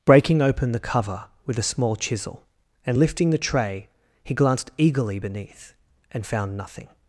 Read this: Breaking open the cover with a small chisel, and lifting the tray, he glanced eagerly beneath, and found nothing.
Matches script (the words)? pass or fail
pass